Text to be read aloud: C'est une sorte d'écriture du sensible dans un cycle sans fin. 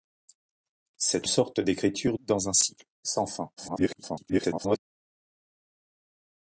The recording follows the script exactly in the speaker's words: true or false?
false